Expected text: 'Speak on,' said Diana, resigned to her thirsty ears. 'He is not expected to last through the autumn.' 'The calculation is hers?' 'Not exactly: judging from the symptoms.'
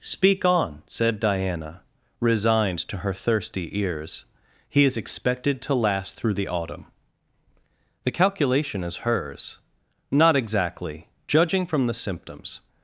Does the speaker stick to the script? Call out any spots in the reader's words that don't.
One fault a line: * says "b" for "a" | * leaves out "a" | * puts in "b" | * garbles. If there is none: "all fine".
* leaves out "not"